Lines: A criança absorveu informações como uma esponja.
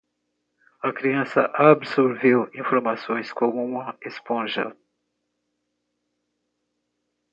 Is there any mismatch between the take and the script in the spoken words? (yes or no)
no